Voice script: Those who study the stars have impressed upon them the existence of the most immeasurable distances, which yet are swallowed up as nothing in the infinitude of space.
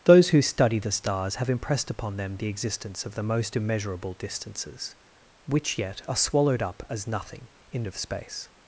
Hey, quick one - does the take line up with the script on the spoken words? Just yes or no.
no